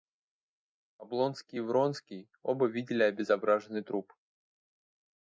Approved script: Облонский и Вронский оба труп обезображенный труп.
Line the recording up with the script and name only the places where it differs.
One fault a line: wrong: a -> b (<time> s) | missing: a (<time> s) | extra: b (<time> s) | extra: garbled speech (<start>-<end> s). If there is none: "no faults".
wrong: труп -> видели (2.7 s)